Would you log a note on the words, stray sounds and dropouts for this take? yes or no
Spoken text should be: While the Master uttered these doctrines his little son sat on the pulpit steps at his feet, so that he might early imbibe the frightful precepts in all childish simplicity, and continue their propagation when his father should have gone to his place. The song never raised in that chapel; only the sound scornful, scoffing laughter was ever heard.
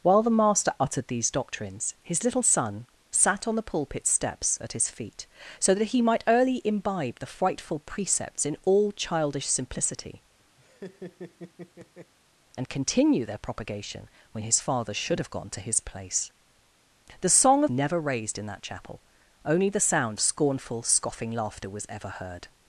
yes